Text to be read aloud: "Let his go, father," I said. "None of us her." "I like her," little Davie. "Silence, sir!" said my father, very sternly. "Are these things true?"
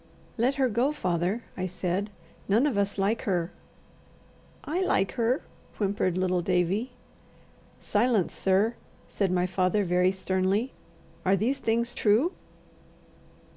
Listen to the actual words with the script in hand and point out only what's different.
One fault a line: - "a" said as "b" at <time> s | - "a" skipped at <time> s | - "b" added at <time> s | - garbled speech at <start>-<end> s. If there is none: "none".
- "his" said as "her" at 0.6 s
- "like" added at 3.0 s
- "whimpered" added at 5.8 s